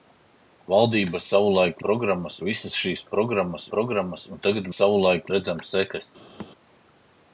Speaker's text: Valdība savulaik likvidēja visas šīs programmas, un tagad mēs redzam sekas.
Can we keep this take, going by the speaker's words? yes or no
no